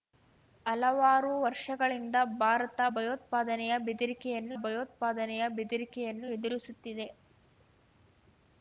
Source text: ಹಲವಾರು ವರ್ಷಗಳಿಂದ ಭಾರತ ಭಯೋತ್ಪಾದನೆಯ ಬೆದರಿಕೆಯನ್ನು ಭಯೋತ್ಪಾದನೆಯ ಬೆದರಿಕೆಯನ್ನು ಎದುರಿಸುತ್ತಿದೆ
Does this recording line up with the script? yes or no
yes